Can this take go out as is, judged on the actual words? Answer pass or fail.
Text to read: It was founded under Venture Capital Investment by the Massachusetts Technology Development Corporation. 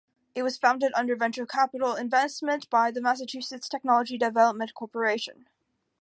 pass